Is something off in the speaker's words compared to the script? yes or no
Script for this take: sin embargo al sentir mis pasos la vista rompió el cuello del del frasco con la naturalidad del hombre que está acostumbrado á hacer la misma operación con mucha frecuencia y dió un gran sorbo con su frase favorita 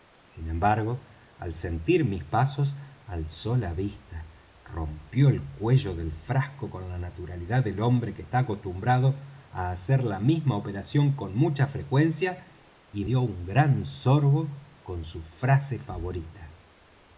yes